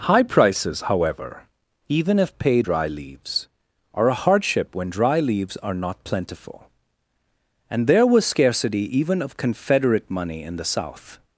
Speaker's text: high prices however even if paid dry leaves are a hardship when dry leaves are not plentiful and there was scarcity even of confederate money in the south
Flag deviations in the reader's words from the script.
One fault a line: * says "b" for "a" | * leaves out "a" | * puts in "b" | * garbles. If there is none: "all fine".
all fine